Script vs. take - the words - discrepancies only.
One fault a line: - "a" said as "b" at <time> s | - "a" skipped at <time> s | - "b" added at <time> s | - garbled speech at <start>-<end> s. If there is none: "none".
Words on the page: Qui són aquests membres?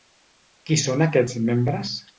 none